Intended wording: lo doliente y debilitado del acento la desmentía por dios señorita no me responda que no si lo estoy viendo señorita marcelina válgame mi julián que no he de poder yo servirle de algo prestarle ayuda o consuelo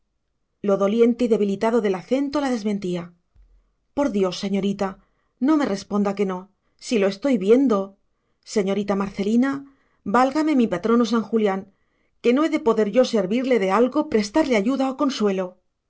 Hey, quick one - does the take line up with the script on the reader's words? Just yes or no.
no